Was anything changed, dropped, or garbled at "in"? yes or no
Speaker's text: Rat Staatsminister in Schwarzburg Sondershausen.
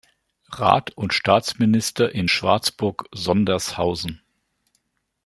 no